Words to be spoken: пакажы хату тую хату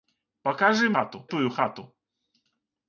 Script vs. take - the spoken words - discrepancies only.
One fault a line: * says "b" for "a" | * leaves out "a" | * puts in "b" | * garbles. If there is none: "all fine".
all fine